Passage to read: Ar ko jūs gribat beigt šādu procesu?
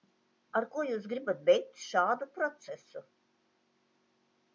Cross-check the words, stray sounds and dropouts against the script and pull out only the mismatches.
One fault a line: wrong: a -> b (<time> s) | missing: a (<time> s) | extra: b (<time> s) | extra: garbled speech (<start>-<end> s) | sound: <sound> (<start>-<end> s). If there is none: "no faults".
no faults